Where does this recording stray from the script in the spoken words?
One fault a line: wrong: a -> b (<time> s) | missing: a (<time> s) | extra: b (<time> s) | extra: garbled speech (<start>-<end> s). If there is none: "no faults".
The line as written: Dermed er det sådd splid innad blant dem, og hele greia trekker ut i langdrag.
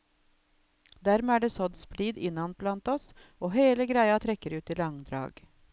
wrong: dem -> oss (3.0 s)